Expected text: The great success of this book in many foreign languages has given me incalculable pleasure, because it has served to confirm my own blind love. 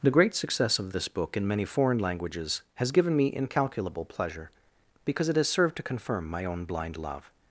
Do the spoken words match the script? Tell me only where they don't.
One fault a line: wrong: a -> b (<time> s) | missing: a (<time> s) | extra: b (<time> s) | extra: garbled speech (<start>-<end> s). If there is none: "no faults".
no faults